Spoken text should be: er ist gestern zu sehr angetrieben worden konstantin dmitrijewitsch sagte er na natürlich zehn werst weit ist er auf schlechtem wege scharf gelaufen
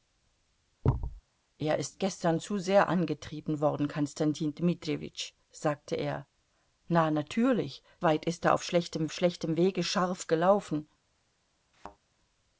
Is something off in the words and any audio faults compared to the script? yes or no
yes